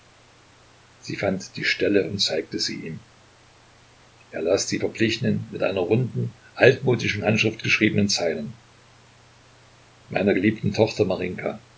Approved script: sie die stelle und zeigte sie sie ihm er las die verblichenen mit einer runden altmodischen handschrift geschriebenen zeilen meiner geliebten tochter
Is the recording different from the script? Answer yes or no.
yes